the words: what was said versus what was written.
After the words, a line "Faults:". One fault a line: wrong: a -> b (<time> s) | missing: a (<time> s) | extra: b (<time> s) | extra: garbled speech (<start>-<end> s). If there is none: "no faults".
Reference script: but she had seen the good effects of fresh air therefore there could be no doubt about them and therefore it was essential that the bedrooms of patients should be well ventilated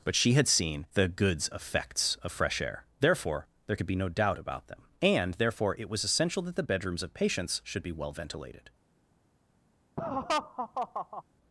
but she had seen the goods effects of fresh air therefore there could be no doubt about them and therefore it was essential that the bedrooms of patients should be well ventilated
Faults:
wrong: good -> goods (1.1 s)